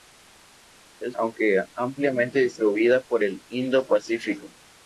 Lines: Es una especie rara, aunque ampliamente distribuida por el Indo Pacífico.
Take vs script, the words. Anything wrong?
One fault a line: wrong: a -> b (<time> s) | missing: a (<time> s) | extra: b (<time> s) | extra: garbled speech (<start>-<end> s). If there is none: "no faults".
missing: una especie rara (1.1 s)